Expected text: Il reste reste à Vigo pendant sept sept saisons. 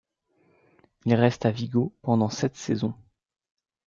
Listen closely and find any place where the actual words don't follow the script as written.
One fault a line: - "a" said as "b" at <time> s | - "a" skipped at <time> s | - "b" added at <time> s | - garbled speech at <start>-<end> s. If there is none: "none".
- "reste" skipped at 1.4 s
- "sept" skipped at 2.5 s